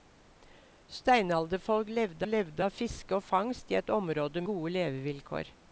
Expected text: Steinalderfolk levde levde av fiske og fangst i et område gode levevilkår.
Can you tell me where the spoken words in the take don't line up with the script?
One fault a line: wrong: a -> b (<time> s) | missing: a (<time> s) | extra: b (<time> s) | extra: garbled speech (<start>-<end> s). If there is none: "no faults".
no faults